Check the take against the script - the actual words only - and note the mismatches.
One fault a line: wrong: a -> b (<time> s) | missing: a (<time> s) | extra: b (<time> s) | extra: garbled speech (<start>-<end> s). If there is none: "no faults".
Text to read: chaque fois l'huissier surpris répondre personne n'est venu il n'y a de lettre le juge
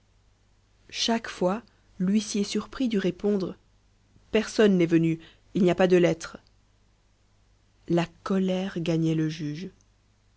extra: dut (2.9 s)
extra: pas (5.8 s)
extra: la colère gagnait (7.9 s)